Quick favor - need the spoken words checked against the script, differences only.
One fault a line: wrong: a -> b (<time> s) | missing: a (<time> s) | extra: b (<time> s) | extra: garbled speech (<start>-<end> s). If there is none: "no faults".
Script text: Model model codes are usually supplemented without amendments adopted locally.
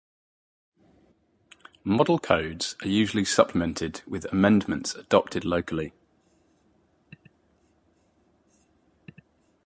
missing: model (2.2 s)
wrong: without -> with (4.1 s)